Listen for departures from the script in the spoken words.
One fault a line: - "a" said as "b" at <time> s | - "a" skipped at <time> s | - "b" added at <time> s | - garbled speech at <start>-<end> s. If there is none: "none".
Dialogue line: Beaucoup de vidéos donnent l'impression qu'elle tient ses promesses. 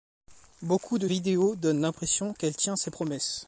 none